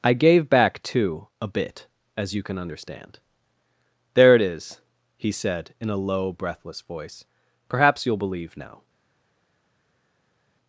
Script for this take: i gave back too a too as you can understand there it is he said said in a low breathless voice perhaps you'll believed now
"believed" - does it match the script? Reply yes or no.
no